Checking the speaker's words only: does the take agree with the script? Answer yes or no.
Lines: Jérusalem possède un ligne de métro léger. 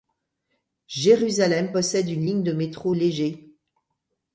no